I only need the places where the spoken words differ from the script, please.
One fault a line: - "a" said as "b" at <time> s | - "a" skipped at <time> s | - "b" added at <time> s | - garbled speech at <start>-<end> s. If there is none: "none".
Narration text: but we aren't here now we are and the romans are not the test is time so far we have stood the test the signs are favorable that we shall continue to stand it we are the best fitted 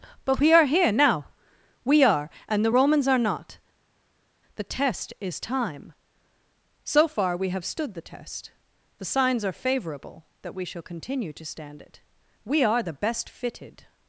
- "aren't" said as "are" at 0.5 s